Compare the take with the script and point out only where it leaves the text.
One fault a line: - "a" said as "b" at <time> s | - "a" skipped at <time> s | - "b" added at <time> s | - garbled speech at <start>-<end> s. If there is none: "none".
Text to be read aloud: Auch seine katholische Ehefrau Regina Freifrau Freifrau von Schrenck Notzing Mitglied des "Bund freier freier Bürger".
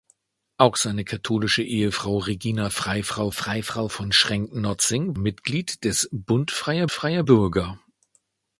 none